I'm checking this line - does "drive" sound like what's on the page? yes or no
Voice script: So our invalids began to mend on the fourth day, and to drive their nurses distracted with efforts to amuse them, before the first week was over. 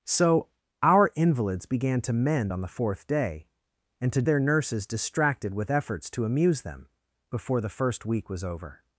no